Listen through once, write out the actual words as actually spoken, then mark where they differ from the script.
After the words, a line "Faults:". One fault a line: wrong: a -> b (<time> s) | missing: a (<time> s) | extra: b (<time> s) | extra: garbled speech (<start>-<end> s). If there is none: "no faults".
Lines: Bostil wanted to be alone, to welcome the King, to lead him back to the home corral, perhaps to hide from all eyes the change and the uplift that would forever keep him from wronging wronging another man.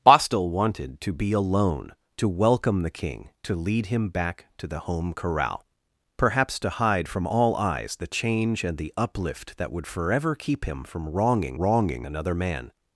Bostil wanted to be alone, to welcome the King, to lead him back to the home corral, perhaps to hide from all eyes the change and the uplift that would forever keep him from wronging wronging another man.
Faults:
no faults